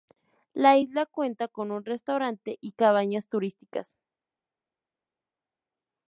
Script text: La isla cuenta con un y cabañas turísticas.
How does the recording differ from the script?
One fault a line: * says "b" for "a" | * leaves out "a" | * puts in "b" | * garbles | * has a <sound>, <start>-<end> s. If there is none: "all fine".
* puts in "restaurante"